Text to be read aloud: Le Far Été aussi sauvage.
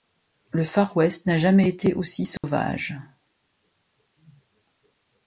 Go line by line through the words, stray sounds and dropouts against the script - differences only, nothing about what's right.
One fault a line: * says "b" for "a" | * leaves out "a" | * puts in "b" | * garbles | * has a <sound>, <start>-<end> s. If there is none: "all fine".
* puts in "West n'a jamais"
* has a dropout, 2.4-2.4 s